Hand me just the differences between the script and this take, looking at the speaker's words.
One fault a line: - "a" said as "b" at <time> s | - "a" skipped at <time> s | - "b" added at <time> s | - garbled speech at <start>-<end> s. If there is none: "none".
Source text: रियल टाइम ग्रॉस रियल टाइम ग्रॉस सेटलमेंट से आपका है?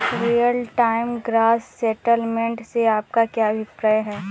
- "रियल टाइम ग्रॉस" skipped at 1.6 s
- "क्या अभिप्राय" added at 3.2 s